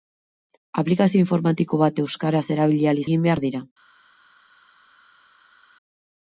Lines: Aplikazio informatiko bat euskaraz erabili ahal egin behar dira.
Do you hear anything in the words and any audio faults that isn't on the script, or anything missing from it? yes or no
no